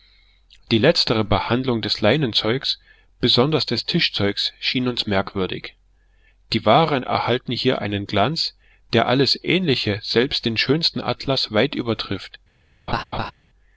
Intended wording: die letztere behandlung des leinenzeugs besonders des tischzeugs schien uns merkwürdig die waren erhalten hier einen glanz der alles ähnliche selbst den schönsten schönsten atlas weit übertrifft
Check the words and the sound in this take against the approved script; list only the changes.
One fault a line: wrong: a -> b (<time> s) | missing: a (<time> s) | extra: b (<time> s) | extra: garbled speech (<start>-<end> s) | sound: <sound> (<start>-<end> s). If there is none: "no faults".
missing: schönsten (11.0 s)
sound: laugh (12.9-13.3 s)